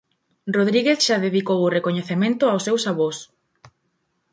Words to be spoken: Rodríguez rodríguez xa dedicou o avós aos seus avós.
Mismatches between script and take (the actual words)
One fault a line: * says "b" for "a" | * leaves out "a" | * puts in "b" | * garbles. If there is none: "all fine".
* leaves out "rodríguez"
* says "recoñecemento" for "avós"